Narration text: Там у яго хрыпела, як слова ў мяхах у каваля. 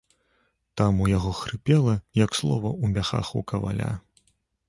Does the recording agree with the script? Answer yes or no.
yes